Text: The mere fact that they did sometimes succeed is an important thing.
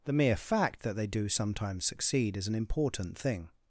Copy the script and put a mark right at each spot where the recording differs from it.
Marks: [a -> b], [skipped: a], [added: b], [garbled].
The mere fact that they [did -> do] sometimes succeed is an important thing.